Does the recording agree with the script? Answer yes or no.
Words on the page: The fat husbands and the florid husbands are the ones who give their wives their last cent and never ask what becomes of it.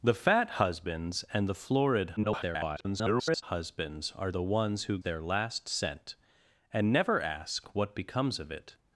no